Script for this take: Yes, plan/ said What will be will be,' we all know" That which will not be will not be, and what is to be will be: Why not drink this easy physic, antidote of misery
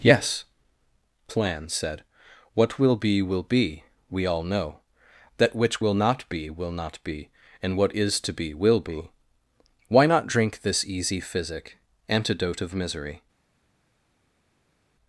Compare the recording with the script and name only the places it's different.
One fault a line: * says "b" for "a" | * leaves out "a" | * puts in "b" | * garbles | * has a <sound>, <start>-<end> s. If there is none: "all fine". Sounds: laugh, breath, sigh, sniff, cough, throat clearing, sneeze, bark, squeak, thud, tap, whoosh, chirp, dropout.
all fine